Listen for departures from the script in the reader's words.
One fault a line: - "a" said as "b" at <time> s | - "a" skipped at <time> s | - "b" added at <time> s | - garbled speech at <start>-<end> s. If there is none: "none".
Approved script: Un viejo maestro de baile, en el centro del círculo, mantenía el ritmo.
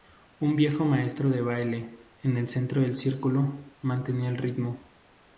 none